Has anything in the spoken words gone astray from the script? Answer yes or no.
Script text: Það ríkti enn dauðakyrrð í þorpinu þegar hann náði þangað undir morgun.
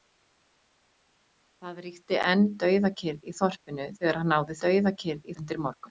yes